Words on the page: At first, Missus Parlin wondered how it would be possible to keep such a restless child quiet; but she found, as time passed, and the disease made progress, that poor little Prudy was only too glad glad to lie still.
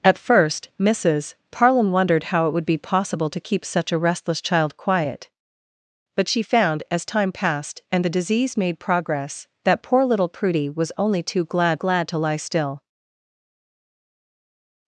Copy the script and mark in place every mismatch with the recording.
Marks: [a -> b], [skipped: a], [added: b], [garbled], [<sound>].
At first, Missus Parlin wondered how it would be possible to keep such a restless child quiet; but she found, as time passed, and the disease made progress, that poor little Prudy was only too glad glad to lie still.